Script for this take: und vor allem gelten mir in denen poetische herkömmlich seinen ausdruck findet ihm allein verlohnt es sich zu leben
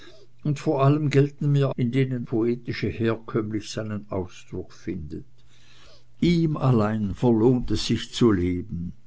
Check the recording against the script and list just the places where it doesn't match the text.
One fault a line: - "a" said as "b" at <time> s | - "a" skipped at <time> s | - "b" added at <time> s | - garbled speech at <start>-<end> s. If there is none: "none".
none